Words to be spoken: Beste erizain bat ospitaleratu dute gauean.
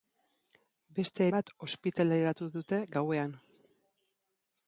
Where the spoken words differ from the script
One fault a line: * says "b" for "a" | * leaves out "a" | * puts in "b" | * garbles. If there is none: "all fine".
* leaves out "erizain"